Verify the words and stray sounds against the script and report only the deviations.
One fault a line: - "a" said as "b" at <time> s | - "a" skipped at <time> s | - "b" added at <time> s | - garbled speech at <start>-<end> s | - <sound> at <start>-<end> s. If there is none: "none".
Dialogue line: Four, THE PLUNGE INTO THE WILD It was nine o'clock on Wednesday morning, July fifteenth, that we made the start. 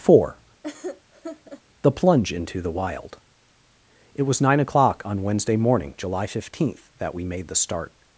- laugh at 0.6-1.6 s